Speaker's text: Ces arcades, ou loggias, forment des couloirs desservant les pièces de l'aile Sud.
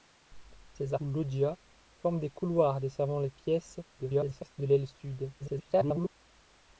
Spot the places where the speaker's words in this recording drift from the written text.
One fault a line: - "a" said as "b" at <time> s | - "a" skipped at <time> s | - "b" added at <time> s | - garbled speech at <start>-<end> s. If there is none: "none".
- "arcades" skipped at 0.9 s
- garbled speech at 4.0-4.5 s
- garbled speech at 5.4-6.1 s